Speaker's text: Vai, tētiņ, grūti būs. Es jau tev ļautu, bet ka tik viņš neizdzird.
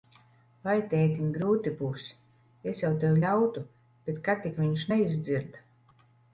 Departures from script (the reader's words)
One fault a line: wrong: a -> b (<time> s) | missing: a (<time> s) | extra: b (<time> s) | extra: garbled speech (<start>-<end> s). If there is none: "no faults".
no faults